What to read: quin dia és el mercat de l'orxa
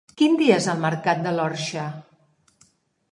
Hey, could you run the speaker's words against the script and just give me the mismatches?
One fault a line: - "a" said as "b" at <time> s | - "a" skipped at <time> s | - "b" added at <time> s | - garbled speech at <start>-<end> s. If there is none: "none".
none